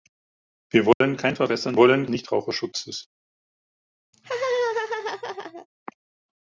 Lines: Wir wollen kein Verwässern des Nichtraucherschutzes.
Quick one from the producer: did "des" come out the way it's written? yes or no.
no